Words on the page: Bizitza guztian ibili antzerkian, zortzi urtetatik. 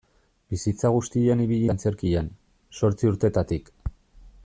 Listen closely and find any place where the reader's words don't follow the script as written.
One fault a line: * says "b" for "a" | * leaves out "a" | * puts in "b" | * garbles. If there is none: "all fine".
all fine